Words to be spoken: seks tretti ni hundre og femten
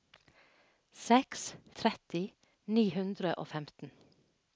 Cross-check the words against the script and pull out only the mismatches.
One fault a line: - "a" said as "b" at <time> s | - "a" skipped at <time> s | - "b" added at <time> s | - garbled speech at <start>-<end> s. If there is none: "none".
none